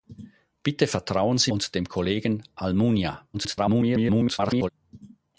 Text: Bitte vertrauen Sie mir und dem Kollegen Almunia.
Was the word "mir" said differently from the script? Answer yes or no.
yes